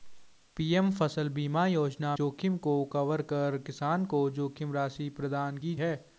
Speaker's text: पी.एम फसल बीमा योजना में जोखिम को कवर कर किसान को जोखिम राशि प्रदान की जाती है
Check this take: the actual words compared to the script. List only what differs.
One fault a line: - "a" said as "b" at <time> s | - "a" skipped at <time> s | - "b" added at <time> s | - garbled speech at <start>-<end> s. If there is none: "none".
- "में" skipped at 2.1 s
- "जाती" skipped at 5.7 s